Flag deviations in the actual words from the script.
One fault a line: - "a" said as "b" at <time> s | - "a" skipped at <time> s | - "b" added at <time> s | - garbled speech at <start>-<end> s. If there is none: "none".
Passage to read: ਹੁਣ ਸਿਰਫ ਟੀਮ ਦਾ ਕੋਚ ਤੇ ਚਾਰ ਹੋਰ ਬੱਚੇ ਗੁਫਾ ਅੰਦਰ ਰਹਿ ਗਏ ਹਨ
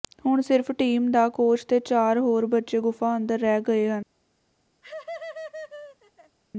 none